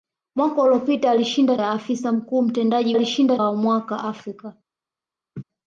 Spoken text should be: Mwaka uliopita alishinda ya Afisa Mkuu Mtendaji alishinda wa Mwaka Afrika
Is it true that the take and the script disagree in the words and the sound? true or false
true